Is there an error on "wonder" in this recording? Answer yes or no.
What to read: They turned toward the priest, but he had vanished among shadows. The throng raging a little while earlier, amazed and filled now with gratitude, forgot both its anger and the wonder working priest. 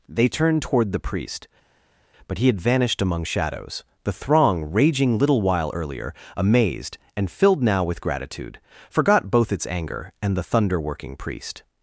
yes